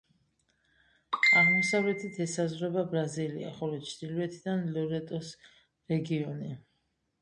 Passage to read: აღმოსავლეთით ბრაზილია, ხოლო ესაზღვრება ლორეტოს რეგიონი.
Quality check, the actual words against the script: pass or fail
fail